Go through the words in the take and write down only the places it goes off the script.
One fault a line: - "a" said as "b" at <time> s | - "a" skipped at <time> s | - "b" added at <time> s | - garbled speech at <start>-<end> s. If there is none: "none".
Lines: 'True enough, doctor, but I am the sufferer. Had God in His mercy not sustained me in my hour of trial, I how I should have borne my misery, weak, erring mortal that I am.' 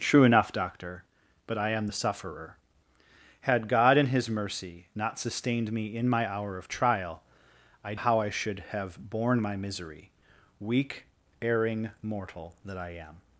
none